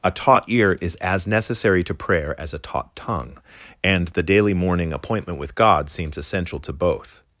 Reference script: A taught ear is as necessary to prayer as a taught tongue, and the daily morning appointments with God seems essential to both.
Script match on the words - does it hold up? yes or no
no